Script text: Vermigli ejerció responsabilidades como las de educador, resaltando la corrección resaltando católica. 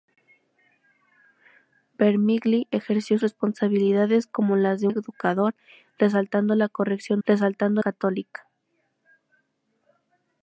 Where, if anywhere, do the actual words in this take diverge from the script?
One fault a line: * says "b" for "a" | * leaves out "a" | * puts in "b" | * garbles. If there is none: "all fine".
all fine